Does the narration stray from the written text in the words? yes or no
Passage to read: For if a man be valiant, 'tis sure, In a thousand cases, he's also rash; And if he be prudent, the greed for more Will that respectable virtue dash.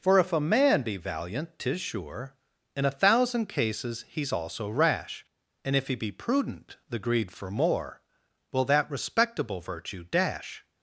no